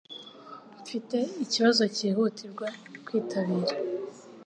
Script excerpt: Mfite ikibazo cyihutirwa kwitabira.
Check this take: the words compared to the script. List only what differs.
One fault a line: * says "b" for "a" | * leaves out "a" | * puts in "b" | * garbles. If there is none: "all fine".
all fine